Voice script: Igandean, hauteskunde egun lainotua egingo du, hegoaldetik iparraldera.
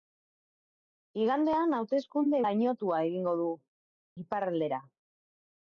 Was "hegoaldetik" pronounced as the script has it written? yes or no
no